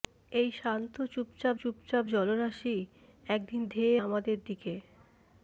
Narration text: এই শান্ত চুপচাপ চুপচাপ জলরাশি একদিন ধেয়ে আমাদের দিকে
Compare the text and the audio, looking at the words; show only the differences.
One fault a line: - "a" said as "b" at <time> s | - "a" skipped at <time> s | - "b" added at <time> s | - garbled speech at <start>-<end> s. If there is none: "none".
none